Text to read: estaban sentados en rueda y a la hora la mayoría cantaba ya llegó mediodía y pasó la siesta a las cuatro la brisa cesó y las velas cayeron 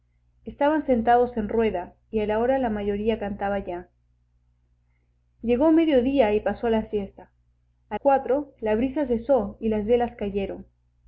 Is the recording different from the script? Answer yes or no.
yes